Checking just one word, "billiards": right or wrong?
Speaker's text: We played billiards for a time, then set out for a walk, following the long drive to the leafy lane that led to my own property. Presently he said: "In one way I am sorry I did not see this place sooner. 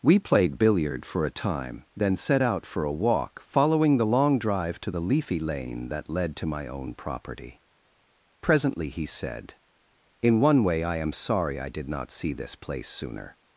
wrong